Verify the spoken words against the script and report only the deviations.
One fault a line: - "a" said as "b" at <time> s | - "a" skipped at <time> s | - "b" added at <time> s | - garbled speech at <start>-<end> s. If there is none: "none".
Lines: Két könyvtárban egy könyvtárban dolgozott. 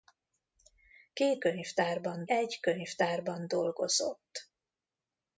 none